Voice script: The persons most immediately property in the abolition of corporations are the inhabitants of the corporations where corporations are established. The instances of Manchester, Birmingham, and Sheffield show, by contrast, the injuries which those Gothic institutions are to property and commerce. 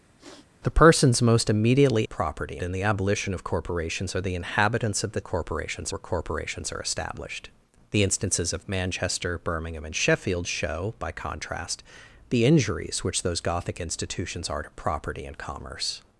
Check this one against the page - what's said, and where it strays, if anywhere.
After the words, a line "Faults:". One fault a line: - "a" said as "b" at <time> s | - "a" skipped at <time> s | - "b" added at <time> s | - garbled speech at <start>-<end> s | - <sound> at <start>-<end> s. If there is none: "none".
The persons most immediately property in the abolition of corporations are the inhabitants of the corporations where corporations are established. The instances of Manchester, Birmingham, and Sheffield show, by contrast, the injuries which those Gothic institutions are to property and commerce.
Faults:
- sniff at 0.2-0.5 s